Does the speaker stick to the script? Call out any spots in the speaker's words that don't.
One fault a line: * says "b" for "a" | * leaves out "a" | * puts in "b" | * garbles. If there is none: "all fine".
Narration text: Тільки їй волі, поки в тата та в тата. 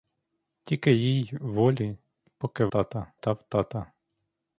all fine